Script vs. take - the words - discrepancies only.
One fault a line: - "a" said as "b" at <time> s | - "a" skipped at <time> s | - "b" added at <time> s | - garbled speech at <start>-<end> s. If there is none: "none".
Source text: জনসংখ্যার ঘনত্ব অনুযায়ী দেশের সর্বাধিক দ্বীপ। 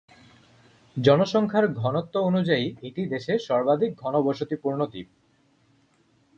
- "এটি" added at 2.8 s
- "ঘনবসতিপূর্ণ" added at 3.9 s